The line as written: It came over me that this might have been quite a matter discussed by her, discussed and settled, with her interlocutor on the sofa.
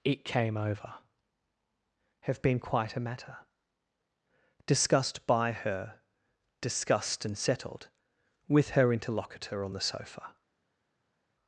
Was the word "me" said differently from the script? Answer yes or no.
yes